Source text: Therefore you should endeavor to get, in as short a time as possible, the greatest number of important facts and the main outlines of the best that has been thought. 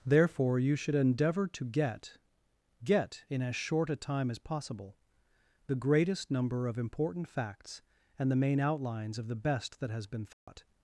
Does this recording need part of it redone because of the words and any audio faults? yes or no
yes